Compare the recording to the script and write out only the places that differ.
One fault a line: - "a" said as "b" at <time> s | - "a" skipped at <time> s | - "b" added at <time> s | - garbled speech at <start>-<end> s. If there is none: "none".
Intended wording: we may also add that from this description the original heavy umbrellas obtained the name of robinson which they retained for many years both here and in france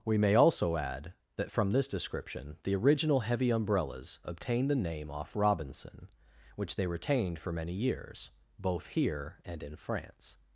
- "of" said as "off" at 5.1 s